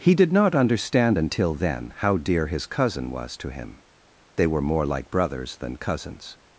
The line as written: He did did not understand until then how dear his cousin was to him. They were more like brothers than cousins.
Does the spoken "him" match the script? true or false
true